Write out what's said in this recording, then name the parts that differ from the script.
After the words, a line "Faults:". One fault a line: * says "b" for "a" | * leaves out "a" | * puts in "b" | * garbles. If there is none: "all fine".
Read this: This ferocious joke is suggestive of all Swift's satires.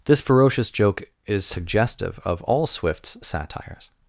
This ferocious joke is suggestive of all Swift's satires.
Faults:
all fine